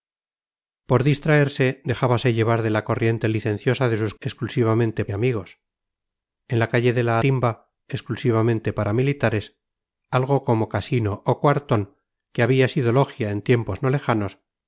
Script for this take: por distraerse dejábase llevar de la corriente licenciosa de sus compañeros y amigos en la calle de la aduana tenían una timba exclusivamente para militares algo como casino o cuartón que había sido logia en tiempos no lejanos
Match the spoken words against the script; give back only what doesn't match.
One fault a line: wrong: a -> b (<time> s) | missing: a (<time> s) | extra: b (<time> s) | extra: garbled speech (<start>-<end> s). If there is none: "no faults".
wrong: compañeros -> exclusivamente (4.2 s)
missing: aduana tenían una (7.2 s)